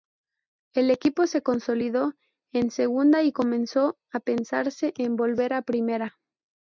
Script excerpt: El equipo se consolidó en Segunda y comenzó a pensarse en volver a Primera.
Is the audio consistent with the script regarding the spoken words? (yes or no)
yes